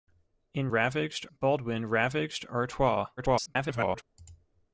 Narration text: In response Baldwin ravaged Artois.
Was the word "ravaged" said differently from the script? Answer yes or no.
no